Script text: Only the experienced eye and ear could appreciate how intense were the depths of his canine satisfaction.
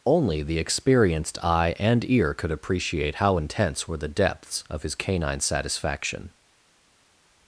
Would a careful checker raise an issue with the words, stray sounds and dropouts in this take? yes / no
no